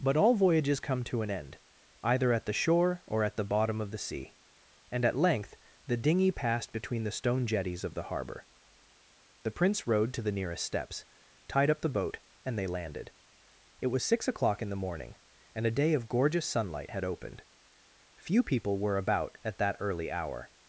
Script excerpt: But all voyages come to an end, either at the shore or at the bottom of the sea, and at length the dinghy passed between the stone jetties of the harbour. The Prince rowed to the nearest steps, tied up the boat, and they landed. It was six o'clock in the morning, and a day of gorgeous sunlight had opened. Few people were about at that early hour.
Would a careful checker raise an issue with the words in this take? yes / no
no